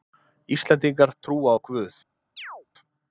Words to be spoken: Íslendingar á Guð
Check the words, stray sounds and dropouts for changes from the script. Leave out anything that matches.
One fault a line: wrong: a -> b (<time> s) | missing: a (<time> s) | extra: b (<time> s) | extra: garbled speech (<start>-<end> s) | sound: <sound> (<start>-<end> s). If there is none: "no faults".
extra: trúa (1.2 s)
sound: chirp (2.4-2.7 s)